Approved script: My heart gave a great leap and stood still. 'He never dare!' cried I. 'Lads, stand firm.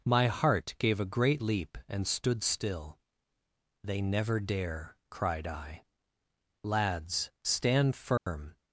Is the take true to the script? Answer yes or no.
no